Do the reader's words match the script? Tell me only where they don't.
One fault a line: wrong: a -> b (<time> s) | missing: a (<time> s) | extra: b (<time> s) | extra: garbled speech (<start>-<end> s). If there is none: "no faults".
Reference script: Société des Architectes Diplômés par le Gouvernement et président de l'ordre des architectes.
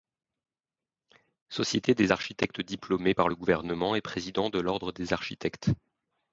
no faults